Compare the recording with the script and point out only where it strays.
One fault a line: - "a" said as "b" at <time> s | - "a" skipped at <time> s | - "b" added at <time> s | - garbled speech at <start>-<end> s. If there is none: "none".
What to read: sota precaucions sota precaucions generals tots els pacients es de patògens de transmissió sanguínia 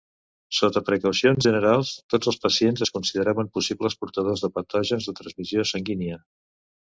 - "sota precaucions" skipped at 1.5 s
- "consideraven possibles portadors" added at 3.0 s